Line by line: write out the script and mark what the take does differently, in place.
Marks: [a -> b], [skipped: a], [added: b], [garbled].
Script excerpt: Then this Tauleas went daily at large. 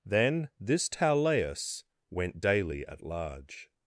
Then this Tauleas went daily at large.